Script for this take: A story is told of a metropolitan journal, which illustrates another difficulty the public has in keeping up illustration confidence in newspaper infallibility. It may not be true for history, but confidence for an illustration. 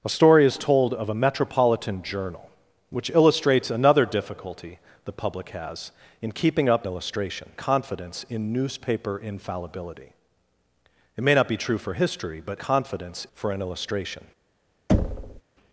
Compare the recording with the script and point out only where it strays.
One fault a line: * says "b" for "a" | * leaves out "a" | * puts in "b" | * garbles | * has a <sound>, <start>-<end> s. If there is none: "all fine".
* has a thud, 14.9-15.4 s